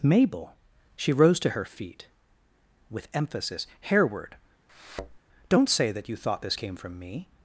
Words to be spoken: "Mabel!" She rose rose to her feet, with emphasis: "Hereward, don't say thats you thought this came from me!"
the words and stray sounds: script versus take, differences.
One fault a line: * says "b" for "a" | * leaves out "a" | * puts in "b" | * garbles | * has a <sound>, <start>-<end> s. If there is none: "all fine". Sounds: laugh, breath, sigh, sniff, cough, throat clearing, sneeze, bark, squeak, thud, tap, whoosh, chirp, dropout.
* leaves out "rose"
* has a thud, 4.7-5.2 s
* says "that" for "thats"